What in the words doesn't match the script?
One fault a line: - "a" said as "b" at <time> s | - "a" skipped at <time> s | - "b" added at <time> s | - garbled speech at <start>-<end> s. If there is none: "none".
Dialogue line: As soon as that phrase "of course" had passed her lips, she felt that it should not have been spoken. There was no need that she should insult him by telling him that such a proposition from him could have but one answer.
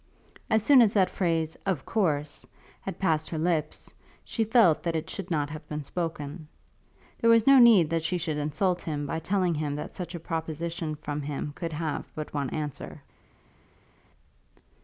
none